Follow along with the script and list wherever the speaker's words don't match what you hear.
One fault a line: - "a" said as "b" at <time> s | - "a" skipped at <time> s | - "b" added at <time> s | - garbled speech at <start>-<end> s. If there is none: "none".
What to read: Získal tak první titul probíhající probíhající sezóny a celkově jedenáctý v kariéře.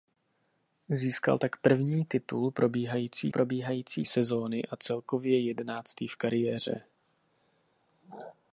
none